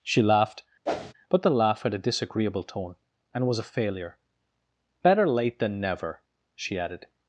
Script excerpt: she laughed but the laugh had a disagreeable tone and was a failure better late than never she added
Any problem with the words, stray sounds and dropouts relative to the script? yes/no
yes